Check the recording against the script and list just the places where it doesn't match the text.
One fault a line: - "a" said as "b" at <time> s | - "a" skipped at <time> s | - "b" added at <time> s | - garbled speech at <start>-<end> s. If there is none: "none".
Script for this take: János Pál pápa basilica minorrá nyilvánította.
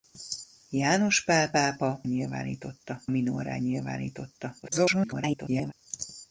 - "basilica" said as "nyilvánította" at 2.0 s
- garbled speech at 4.6-5.7 s